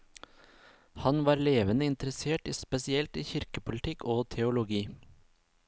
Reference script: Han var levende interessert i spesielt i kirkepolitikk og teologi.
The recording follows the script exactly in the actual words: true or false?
true